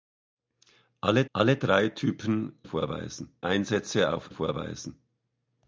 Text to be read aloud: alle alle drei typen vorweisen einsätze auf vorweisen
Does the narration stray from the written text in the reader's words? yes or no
no